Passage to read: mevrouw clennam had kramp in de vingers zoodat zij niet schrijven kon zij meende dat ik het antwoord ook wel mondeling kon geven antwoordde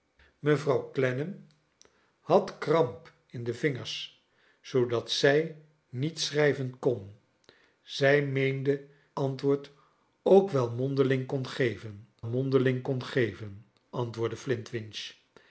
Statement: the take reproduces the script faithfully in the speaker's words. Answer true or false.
false